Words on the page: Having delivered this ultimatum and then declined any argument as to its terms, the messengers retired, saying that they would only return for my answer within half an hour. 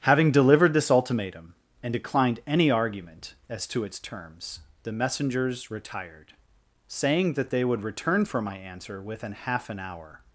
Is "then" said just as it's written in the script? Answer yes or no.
no